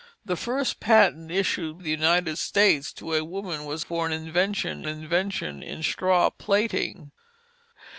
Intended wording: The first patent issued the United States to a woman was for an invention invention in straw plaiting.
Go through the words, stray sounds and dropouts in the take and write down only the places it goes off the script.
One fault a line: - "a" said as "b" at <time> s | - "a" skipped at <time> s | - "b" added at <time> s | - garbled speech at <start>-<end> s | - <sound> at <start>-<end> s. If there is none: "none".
none